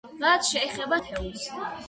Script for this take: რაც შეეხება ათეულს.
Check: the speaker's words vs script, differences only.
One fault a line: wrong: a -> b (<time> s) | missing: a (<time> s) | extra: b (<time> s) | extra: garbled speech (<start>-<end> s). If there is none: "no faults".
no faults